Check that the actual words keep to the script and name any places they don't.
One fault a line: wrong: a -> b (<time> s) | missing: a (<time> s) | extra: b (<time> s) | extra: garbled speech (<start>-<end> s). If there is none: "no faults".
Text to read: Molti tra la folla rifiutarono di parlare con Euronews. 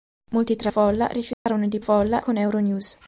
missing: la (0.7 s)
wrong: parlare -> folla (1.8 s)